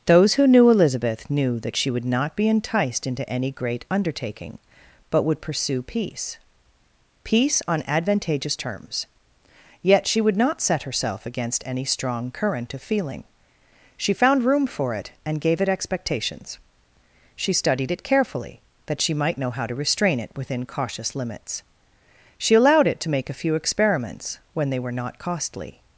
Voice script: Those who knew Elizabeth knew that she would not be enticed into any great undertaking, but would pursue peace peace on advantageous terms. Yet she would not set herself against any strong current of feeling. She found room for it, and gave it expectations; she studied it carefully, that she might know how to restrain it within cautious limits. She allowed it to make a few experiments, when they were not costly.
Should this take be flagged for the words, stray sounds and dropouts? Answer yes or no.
no